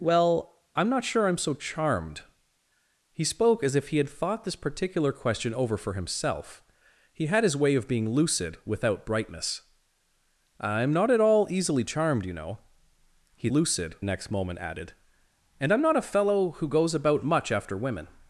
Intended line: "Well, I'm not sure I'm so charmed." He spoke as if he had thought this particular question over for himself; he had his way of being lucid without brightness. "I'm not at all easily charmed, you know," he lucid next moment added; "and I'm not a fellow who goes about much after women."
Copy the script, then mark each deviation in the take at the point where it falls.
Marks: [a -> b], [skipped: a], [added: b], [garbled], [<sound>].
"Well, I'm not sure I'm so charmed." He spoke as if he had thought this particular question over for himself; he had his way of being lucid without brightness. "I'm not at all easily charmed, you know," he lucid next moment added; "and I'm not a fellow who goes about much after women."